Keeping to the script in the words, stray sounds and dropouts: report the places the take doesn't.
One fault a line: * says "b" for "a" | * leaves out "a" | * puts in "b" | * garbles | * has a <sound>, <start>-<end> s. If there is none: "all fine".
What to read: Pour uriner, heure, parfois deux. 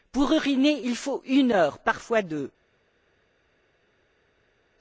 * puts in "il faut une"